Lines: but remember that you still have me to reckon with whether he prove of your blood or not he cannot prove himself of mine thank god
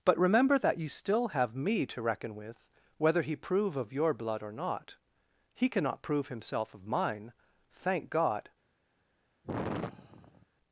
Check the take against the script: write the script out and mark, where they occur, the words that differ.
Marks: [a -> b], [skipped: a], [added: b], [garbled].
but remember that you still have me to reckon with whether he prove of your blood or not he cannot prove himself of mine thank god